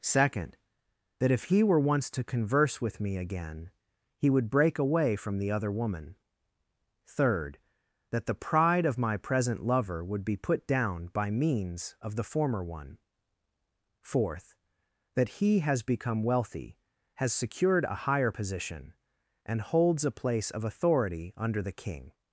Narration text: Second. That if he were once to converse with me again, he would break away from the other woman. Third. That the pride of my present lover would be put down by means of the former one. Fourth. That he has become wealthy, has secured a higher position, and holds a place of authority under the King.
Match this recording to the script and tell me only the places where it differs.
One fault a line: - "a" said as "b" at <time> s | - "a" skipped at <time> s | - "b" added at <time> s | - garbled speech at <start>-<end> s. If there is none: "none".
none